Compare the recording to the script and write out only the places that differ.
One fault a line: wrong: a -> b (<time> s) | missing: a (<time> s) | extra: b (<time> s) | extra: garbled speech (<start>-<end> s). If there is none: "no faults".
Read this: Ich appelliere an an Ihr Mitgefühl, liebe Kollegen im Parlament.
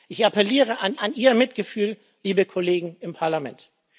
no faults